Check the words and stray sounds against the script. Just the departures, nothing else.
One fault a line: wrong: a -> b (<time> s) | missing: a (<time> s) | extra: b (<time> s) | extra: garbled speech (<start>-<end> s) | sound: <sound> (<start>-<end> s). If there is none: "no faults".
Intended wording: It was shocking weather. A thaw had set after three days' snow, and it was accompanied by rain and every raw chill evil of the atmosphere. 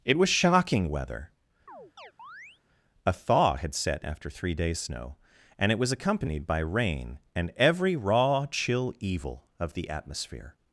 sound: chirp (1.7-2.6 s)